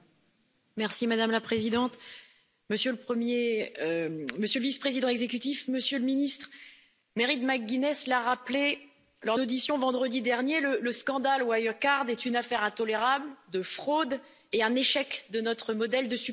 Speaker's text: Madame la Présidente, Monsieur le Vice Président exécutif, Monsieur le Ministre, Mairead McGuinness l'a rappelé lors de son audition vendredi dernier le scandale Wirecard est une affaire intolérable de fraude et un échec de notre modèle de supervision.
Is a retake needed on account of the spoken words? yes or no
yes